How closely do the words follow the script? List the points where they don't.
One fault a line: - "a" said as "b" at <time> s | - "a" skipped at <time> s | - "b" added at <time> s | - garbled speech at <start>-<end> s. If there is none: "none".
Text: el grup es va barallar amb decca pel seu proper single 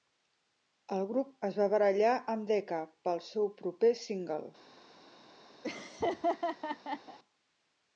none